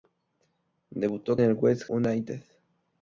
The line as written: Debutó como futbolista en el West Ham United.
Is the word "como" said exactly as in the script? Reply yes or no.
no